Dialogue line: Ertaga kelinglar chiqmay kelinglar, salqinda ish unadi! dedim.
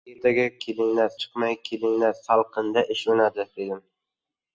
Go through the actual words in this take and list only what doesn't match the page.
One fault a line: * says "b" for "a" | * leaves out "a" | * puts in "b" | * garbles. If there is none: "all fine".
all fine